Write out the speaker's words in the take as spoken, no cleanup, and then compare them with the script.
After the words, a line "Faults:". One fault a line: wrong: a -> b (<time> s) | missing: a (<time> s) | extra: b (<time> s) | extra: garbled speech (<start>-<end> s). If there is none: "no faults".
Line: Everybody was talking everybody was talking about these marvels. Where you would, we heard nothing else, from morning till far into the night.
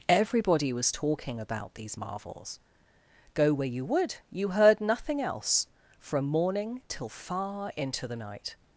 Everybody was talking about these marvels. Go where you would, you heard nothing else, from morning till far into the night.
Faults:
missing: everybody was talking (1.4 s)
extra: Go (3.3 s)
wrong: we -> you (4.3 s)